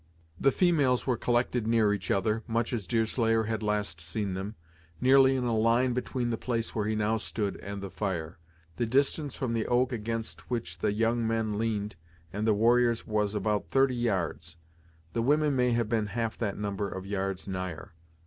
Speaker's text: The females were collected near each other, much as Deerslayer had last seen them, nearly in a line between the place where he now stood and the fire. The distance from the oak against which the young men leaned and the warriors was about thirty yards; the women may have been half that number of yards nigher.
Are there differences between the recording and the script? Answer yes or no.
no